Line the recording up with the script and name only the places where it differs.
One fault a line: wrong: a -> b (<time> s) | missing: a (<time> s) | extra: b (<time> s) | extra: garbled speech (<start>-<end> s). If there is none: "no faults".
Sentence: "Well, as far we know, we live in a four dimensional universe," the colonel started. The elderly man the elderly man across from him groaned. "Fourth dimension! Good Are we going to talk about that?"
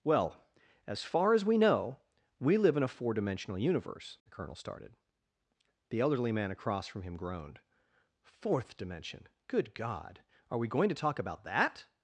extra: as (1.3 s)
missing: the elderly man (6.5 s)
extra: God (9.7 s)